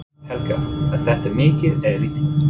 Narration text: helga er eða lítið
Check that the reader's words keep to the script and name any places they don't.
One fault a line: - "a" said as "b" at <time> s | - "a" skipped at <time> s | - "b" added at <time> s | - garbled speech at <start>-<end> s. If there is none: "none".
- "þetta mikið" added at 1.0 s